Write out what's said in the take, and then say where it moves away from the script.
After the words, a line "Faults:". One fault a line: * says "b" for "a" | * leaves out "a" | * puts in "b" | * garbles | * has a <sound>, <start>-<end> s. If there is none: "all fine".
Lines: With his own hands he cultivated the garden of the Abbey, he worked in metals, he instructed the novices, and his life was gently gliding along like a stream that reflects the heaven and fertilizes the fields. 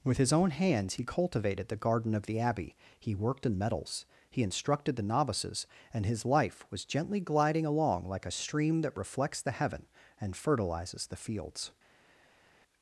With his own hands he cultivated the garden of the Abbey, he worked in metals, he instructed the novices, and his life was gently gliding along like a stream that reflects the heaven and fertilizes the fields.
Faults:
all fine